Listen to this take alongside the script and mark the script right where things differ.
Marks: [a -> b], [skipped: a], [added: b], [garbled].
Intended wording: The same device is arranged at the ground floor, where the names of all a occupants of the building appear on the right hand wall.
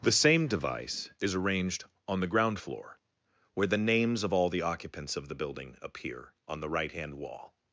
The same device is arranged [at -> on] the ground floor, where the names of all [a -> the] occupants of the building appear on the right hand wall.